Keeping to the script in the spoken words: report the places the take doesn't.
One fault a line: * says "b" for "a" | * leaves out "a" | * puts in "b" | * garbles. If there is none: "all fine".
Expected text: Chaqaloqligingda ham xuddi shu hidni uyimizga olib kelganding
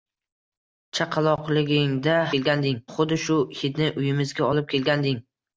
* says "kelganding" for "ham"